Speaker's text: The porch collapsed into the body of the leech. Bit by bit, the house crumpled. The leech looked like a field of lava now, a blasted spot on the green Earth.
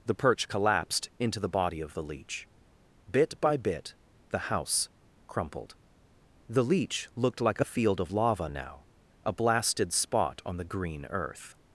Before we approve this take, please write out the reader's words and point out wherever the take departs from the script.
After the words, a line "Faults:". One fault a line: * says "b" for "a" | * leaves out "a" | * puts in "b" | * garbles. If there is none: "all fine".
The perch collapsed into the body of the leech. Bit by bit, the house crumpled. The leech looked like a field of lava now, a blasted spot on the green Earth.
Faults:
* says "perch" for "porch"